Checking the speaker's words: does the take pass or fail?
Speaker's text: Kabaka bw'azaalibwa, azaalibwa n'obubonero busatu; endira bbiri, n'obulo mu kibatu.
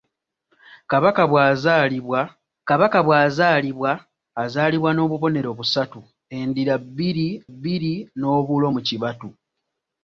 fail